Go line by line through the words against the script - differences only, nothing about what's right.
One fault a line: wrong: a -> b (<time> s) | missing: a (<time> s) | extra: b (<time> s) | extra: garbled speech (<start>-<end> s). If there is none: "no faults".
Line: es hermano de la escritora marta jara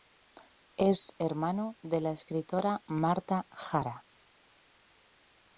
no faults